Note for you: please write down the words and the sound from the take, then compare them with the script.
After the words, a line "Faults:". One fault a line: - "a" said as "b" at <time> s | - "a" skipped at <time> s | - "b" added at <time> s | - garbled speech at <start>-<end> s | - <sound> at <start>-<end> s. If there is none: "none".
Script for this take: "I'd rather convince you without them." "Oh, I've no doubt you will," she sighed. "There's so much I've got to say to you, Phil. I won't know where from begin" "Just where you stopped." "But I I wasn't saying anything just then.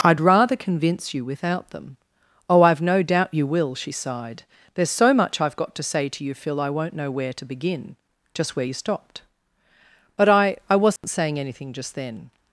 "I'd rather convince you without them." "Oh, I've no doubt you will," she sighed. "There's so much I've got to say to you, Phil. I won't know where to begin" "Just where you stopped." "But I I wasn't saying anything just then.
Faults:
- "from" said as "to" at 7.3 s
- dropout at 11.0-11.0 s